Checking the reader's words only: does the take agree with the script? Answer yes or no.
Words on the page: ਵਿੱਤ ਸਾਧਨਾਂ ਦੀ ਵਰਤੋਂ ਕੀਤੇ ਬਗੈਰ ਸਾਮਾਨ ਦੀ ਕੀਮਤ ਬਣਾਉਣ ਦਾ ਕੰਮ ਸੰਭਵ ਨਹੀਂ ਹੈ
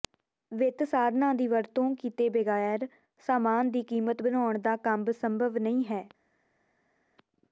yes